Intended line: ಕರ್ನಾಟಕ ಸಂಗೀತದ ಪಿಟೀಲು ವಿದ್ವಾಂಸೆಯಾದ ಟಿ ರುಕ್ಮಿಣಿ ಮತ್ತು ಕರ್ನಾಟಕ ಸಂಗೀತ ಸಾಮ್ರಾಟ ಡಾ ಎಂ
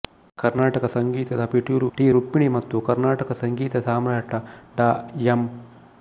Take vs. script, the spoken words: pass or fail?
fail